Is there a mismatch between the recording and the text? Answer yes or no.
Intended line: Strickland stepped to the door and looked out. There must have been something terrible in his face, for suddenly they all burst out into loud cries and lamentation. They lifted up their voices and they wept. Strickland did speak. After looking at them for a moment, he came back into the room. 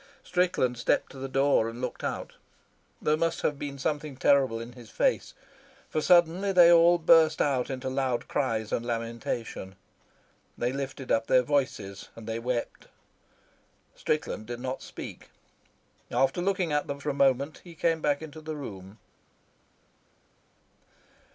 yes